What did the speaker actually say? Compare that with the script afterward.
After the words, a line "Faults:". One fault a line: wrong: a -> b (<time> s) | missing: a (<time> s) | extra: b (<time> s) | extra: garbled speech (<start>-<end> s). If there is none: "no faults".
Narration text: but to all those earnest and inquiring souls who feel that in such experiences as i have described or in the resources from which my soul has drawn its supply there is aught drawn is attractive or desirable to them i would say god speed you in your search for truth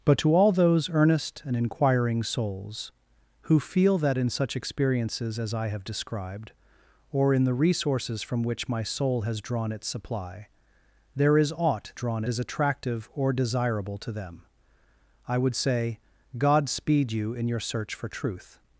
but to all those earnest and inquiring souls who feel that in such experiences as i have described or in the resources from which my soul has drawn its supply there is aught drawn is attractive or desirable to them i would say god speed you in your search for truth
Faults:
no faults